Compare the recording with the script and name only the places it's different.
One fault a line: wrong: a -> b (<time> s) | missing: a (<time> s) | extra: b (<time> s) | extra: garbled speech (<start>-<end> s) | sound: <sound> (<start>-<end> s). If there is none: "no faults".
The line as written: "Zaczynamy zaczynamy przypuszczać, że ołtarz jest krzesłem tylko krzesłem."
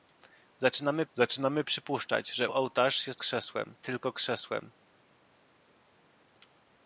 no faults